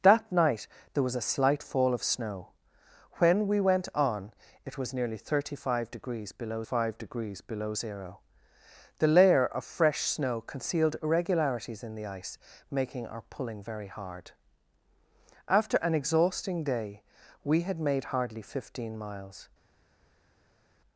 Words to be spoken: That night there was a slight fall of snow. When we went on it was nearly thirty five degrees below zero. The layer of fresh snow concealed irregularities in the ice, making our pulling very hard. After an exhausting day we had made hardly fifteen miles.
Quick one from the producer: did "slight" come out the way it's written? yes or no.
yes